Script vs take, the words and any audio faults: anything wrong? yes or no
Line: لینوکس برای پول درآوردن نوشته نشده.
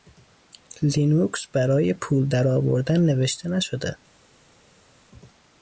no